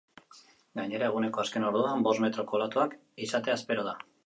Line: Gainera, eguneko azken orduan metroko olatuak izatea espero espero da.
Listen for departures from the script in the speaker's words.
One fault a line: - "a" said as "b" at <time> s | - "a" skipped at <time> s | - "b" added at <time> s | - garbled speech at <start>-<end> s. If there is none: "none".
- "bost" added at 2.1 s
- "espero" skipped at 3.9 s